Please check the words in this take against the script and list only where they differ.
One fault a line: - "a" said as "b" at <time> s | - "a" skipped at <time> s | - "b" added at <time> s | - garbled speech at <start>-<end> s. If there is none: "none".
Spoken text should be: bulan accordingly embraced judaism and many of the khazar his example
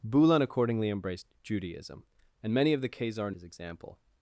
none